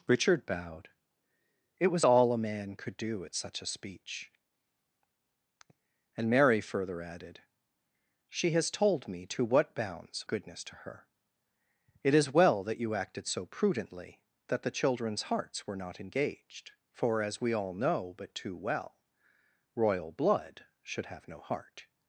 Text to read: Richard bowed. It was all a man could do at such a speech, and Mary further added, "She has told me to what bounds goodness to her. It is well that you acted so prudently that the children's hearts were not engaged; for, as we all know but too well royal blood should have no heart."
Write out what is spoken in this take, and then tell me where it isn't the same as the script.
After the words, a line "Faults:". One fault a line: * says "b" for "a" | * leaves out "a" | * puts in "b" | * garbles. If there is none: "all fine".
Richard bowed. It was all a man could do at such a speech, and Mary further added, "She has told me to what bounds goodness to her. It is well that you acted so prudently that the children's hearts were not engaged; for, as we all know but too well royal blood should have no heart."
Faults:
all fine